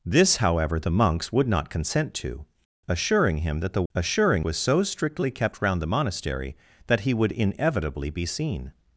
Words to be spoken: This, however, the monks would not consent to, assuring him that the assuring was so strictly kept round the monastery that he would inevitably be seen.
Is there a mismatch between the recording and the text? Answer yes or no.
no